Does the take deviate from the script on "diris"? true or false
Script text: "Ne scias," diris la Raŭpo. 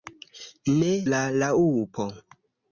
true